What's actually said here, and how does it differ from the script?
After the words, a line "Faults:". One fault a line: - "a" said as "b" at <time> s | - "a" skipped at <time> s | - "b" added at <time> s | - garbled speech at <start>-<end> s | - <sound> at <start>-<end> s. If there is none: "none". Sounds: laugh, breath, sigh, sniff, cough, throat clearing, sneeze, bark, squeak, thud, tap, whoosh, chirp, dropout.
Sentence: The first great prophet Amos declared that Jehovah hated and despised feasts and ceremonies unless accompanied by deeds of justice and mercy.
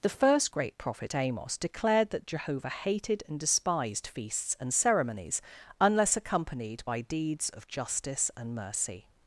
The first great prophet Amos declared that Jehovah hated and despised feasts and ceremonies unless accompanied by deeds of justice and mercy.
Faults:
none